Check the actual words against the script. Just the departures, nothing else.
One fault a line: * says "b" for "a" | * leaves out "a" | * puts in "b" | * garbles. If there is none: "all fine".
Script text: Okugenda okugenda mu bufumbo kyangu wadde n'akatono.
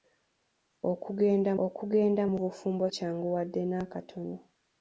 all fine